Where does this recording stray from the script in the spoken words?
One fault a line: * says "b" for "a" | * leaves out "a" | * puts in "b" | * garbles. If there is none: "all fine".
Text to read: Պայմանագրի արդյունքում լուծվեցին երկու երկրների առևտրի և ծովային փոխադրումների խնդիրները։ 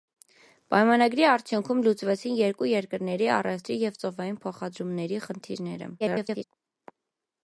* garbles